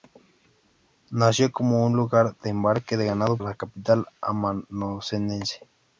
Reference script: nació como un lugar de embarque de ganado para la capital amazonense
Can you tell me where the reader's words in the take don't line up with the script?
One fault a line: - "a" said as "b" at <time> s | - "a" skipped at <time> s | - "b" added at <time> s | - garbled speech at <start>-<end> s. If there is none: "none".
- "para" skipped at 3.4 s